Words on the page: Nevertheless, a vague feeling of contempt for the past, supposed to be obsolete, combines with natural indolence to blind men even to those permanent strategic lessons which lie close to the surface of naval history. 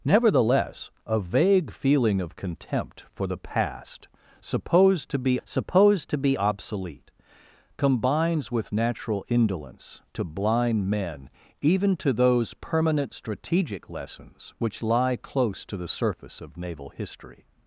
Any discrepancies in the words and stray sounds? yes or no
yes